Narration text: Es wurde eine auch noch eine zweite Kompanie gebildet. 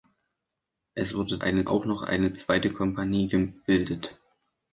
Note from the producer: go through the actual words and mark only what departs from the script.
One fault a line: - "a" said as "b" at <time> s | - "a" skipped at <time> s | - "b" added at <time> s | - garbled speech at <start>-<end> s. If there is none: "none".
none